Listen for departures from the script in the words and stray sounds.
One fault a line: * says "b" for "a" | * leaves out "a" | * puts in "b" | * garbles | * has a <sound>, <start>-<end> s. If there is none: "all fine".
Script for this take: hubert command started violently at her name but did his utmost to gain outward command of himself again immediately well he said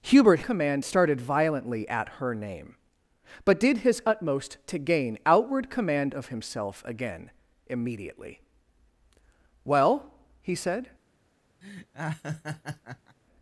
* has a laugh, 11.6-13.2 s